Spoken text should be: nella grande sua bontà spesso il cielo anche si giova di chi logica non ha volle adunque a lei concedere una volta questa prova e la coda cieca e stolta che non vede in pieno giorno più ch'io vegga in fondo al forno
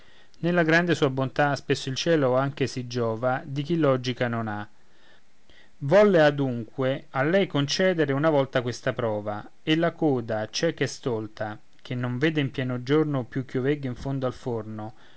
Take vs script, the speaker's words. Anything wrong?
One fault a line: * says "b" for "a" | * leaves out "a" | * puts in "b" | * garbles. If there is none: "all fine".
all fine